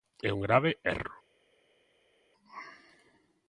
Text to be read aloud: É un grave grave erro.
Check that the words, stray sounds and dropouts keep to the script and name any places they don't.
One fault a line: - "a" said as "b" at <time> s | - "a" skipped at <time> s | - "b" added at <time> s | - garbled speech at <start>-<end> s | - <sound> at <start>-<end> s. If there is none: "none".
- "grave" skipped at 0.7 s